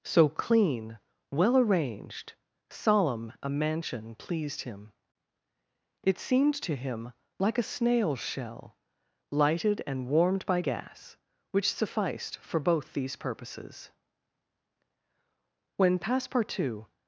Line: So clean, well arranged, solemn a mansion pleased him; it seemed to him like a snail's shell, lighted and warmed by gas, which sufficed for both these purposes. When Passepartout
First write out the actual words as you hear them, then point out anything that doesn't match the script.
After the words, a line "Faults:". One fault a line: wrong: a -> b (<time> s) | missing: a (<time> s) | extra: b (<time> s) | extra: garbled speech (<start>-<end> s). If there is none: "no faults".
So clean, well arranged, solemn a mansion pleased him; it seemed to him like a snail's shell, lighted and warmed by gas, which sufficed for both these purposes. When Passepartout
Faults:
no faults